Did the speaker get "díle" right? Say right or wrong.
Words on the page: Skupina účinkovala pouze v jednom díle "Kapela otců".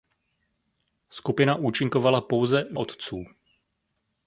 wrong